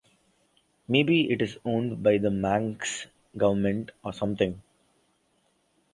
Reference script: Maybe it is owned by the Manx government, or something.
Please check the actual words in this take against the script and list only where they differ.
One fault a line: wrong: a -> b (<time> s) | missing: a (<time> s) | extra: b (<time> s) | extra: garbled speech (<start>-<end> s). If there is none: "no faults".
no faults